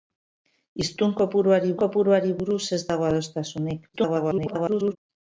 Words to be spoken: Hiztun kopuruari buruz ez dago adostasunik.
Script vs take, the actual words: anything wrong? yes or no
yes